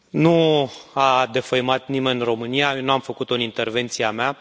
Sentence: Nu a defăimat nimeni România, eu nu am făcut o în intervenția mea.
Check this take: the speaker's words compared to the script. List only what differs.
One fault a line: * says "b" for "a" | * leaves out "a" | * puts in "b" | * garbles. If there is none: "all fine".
all fine